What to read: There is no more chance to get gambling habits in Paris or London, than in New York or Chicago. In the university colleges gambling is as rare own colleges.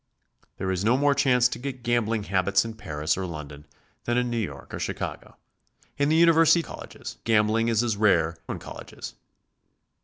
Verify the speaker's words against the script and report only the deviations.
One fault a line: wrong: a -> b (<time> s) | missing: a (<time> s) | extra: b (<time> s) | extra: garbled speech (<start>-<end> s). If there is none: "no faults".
no faults